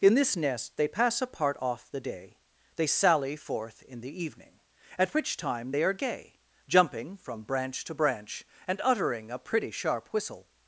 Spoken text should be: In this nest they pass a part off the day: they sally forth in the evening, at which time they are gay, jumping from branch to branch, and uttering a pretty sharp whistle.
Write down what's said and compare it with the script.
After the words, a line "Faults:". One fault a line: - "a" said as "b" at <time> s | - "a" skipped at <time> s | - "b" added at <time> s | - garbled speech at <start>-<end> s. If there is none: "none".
In this nest they pass a part off the day: they sally forth in the evening, at which time they are gay, jumping from branch to branch, and uttering a pretty sharp whistle.
Faults:
none